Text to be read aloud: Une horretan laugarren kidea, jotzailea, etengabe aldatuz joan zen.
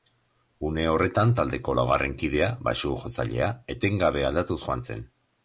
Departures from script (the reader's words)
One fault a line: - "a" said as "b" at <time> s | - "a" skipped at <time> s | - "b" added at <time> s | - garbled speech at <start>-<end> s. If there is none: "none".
- "taldeko" added at 1.4 s
- "baxu" added at 2.7 s